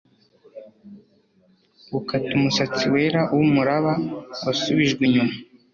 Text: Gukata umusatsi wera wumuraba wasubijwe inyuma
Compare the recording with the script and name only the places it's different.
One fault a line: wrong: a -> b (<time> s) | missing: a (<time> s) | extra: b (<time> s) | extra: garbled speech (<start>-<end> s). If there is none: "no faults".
no faults